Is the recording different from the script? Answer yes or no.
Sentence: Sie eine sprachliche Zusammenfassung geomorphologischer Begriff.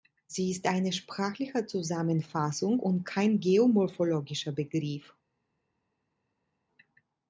yes